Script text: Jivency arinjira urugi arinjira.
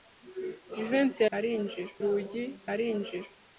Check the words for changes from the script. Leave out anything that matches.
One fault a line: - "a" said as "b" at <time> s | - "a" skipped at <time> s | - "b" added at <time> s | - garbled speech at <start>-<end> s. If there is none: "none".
none